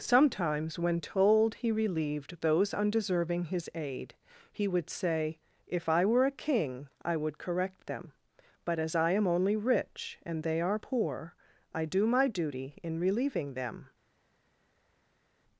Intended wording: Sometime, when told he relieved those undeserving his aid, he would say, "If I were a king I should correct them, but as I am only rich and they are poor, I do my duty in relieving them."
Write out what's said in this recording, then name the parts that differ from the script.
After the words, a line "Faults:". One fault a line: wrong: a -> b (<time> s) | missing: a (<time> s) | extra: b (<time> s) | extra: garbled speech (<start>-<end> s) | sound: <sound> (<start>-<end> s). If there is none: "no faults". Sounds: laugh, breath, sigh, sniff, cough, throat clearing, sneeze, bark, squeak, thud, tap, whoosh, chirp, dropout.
Sometimes, when told he relieved those undeserving his aid, he would say, "If I were a king I would correct them, but as I am only rich and they are poor, I do my duty in relieving them."
Faults:
wrong: Sometime -> Sometimes (0.0 s)
wrong: should -> would (7.2 s)